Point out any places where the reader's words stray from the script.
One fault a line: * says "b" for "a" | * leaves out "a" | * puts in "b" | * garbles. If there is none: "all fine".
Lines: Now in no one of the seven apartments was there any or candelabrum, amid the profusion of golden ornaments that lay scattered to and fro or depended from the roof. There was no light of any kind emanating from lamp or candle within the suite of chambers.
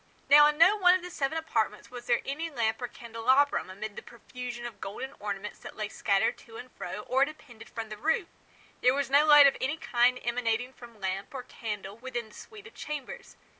* puts in "lamp"